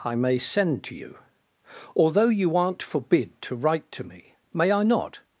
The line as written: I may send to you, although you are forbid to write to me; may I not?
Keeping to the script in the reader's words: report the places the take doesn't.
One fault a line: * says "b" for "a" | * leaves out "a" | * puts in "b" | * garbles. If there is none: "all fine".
* says "aren't" for "are"